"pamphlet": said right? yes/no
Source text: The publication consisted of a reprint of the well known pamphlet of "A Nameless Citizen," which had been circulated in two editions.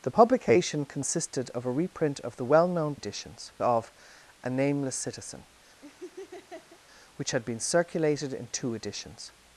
no